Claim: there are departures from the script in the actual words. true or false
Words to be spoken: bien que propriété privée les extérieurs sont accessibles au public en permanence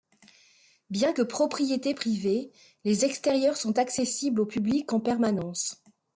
false